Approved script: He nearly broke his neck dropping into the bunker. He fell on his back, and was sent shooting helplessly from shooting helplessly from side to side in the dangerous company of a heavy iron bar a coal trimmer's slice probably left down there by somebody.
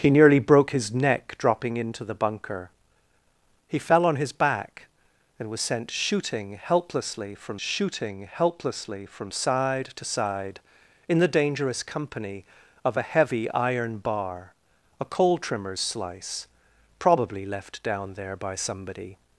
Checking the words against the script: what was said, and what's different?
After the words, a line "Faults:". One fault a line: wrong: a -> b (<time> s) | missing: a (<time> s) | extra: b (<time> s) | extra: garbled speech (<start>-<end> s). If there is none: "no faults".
He nearly broke his neck dropping into the bunker. He fell on his back, and was sent shooting helplessly from shooting helplessly from side to side in the dangerous company of a heavy iron bar a coal trimmer's slice probably left down there by somebody.
Faults:
no faults